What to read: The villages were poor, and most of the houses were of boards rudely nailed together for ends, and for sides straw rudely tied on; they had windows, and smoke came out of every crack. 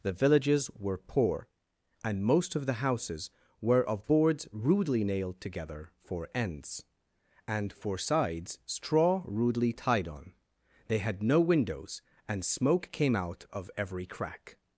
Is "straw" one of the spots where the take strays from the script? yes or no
no